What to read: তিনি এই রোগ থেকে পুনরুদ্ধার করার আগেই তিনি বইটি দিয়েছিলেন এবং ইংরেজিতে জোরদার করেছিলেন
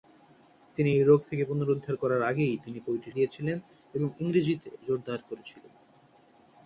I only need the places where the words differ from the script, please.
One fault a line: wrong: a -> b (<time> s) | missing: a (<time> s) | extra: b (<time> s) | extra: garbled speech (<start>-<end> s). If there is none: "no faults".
no faults